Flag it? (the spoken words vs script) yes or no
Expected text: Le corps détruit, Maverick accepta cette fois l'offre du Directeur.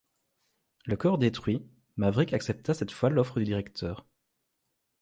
no